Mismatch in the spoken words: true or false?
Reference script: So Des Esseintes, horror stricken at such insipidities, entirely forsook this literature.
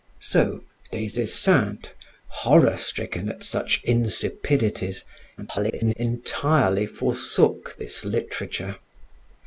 true